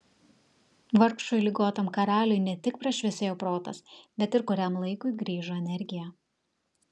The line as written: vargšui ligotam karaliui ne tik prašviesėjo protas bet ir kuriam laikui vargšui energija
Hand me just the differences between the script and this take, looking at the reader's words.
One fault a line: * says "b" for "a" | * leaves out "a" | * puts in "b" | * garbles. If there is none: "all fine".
* says "grįžo" for "vargšui"